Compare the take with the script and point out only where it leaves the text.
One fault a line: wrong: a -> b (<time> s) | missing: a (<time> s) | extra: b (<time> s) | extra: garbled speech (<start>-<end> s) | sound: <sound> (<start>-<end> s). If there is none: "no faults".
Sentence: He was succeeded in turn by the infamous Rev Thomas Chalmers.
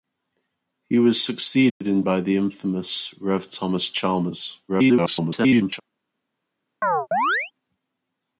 sound: dropout (1.7-1.8 s)
missing: turn (2.0 s)
extra: garbled speech (4.7-5.8 s)
sound: chirp (6.8-7.5 s)